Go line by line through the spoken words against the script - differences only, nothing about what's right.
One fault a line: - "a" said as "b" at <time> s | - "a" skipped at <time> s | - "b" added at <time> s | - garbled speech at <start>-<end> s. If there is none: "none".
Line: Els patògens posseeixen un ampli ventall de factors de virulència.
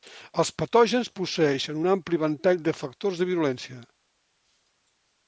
none